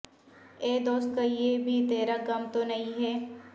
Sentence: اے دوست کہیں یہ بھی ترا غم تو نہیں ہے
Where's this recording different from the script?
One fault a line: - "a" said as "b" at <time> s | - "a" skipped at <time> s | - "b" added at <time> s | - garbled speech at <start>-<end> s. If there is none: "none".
none